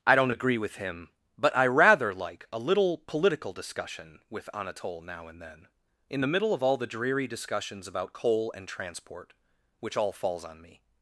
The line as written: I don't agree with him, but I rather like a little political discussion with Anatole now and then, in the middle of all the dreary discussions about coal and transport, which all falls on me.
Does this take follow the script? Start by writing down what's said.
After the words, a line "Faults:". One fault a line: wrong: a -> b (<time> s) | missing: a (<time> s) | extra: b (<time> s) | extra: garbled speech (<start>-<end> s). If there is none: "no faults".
I don't agree with him, but I rather like a little political discussion with Anatole now and then, in the middle of all the dreary discussions about coal and transport, which all falls on me.
Faults:
no faults